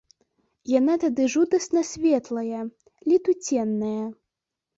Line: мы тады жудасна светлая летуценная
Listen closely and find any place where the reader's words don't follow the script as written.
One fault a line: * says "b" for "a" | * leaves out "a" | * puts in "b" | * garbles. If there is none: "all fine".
* says "яна" for "мы"